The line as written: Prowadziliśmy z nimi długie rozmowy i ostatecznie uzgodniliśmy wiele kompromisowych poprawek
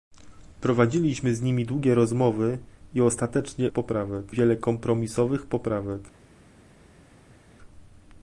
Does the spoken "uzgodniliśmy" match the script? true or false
false